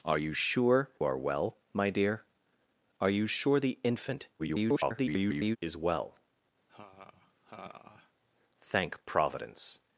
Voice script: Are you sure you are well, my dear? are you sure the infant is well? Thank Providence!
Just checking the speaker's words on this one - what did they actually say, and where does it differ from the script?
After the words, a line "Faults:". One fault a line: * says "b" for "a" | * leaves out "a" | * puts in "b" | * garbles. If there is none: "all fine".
Are you sure are well, my dear? are you sure the infant [garbled] is well? Thank Providence!
Faults:
* leaves out "you"
* garbles